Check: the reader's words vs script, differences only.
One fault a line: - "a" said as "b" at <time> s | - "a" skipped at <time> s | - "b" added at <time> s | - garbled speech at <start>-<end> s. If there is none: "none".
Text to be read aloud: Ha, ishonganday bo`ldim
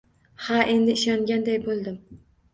- "endi" added at 0.8 s